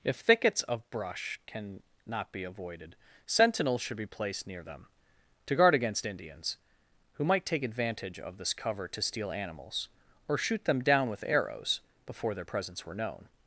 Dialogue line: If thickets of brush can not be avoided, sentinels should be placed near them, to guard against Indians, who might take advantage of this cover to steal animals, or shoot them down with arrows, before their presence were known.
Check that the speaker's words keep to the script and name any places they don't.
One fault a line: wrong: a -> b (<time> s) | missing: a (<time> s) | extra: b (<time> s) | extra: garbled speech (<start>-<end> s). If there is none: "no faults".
no faults